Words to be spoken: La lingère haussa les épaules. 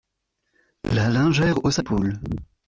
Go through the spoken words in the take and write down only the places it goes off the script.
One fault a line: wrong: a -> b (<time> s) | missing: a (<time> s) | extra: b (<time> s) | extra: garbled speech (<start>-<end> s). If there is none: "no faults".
missing: les (1.8 s)